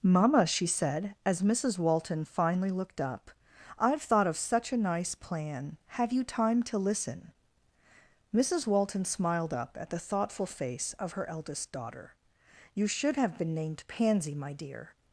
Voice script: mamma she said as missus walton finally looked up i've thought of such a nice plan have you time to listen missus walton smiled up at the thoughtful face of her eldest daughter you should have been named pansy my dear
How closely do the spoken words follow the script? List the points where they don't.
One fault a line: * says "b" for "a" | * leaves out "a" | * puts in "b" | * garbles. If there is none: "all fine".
all fine